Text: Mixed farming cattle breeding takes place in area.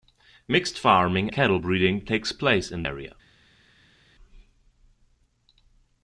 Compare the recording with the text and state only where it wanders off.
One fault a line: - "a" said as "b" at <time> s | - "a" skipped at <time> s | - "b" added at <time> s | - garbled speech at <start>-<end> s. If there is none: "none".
none